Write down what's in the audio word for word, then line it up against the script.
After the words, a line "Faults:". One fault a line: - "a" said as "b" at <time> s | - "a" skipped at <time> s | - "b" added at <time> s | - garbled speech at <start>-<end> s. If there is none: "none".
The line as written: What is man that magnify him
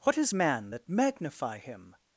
What is man that magnify him
Faults:
none